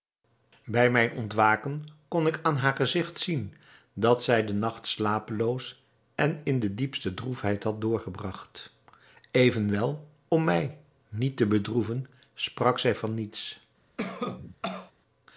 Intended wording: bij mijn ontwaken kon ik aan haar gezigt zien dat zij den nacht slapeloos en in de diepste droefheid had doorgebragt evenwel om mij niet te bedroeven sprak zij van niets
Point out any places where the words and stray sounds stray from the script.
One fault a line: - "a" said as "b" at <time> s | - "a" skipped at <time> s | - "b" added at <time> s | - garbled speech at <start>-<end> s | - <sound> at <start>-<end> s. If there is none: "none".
- cough at 14.0-14.9 s